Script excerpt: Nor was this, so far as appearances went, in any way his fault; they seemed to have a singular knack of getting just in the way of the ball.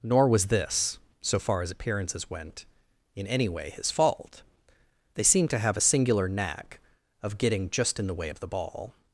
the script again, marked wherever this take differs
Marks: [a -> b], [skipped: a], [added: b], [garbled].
Nor was this, so far as appearances went, in any way his fault; they seemed to have a singular knack of getting just in the way of the ball.